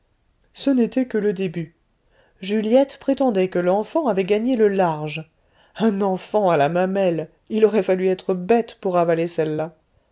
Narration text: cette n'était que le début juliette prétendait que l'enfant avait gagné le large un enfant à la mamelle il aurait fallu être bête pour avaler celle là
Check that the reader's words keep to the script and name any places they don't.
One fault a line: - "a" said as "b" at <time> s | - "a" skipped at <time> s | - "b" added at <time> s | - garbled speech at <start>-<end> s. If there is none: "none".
- "cette" said as "ce" at 0.6 s